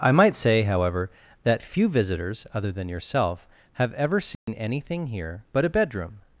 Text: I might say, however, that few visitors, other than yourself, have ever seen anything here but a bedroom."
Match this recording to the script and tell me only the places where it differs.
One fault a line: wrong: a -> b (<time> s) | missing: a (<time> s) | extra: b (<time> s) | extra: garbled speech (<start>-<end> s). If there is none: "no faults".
no faults